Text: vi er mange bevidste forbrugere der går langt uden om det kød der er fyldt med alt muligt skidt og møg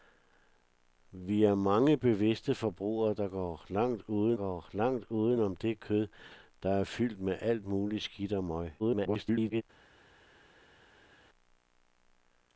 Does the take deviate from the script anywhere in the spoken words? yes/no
yes